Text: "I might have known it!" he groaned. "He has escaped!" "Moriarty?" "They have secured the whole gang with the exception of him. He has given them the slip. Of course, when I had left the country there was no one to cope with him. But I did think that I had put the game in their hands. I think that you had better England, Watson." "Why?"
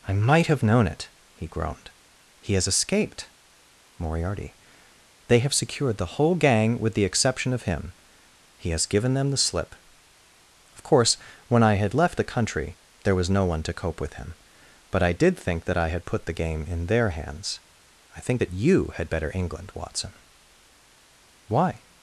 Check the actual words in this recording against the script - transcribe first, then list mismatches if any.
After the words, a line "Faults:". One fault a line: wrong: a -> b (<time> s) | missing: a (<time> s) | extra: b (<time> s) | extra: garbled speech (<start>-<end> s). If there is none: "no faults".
"I might have known it!" he groaned. "He has escaped!" "Moriarty?" "They have secured the whole gang with the exception of him. He has given them the slip. Of course, when I had left the country there was no one to cope with him. But I did think that I had put the game in their hands. I think that you had better England, Watson." "Why?"
Faults:
no faults